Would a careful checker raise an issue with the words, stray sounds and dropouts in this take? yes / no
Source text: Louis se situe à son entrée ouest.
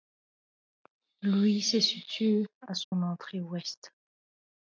yes